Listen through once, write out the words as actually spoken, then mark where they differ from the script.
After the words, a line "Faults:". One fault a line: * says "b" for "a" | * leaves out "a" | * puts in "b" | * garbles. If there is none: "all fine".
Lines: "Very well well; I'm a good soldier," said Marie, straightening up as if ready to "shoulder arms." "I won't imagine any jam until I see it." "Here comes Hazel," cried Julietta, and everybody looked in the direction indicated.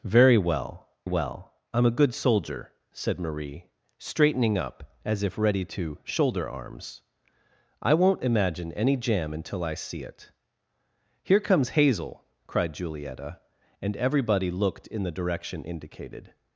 "Very well well; I'm a good soldier," said Marie, straightening up as if ready to "shoulder arms." "I won't imagine any jam until I see it." "Here comes Hazel," cried Julietta, and everybody looked in the direction indicated.
Faults:
all fine